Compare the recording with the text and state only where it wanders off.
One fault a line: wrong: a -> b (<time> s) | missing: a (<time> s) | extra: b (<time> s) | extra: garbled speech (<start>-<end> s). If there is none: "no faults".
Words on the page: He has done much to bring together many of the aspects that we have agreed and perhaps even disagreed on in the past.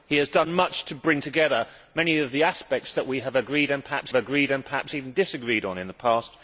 extra: agreed and perhaps (4.1 s)